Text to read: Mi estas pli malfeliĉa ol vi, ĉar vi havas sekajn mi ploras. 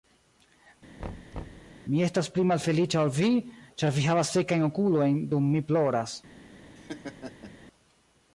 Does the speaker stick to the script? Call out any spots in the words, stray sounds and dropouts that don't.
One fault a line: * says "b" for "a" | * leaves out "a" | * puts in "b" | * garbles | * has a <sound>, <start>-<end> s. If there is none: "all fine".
* has a thud, 1.0-1.7 s
* puts in "okulojn dum"
* has a laugh, 6.8-7.5 s